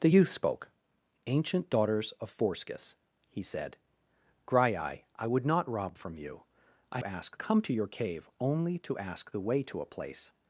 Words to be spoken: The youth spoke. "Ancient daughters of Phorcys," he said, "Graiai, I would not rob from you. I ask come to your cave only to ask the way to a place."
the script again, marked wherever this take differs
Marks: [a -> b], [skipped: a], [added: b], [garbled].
The youth spoke. "Ancient daughters of Phorcys," he said, "Graiai, I would not rob from you. I ask come to your cave only to ask the way to a place."